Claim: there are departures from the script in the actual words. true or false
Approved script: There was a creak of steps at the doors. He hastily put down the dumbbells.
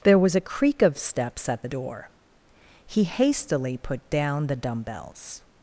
true